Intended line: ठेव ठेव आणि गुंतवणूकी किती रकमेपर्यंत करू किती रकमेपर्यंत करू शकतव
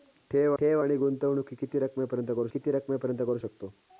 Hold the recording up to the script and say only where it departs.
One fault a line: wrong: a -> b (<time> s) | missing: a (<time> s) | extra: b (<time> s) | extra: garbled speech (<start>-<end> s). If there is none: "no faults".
no faults